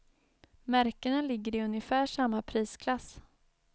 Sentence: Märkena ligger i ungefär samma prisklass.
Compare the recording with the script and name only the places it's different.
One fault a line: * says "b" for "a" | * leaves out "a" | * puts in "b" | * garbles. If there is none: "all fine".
all fine